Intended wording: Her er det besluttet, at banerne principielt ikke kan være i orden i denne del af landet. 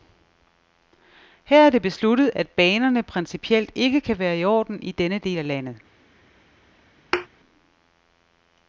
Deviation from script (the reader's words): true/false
false